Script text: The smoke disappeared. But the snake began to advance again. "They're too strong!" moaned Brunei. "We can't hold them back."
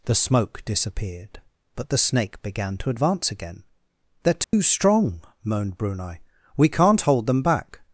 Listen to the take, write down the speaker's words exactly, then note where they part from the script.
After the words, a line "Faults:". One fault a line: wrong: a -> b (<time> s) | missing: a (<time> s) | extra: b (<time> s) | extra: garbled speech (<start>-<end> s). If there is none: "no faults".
The smoke disappeared. But the snake began to advance again. "They're too strong!" moaned Brunei. "We can't hold them back."
Faults:
no faults